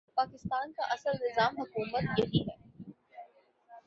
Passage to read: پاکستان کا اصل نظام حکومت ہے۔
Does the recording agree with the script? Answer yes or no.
no